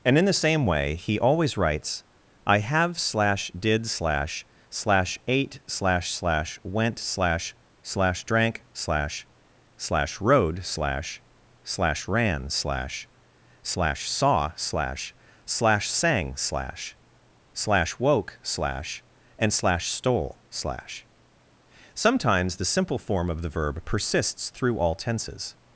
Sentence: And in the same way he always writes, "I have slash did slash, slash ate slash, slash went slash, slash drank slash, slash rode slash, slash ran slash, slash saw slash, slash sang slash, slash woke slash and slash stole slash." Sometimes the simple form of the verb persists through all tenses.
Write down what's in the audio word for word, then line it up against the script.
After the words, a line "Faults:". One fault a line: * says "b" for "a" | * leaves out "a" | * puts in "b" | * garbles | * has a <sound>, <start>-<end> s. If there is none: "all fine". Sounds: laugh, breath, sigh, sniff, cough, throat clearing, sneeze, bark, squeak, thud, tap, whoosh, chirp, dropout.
And in the same way he always writes, "I have slash did slash, slash ate slash, slash went slash, slash drank slash, slash rode slash, slash ran slash, slash saw slash, slash sang slash, slash woke slash and slash stole slash." Sometimes the simple form of the verb persists through all tenses.
Faults:
all fine